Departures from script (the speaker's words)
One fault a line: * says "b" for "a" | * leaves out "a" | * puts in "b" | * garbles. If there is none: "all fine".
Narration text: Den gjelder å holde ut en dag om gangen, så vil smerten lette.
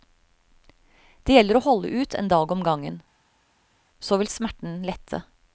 * says "Det" for "Den"